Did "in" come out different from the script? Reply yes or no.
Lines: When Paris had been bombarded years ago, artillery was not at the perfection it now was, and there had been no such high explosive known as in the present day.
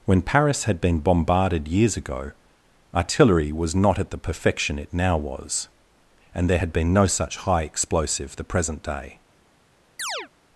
yes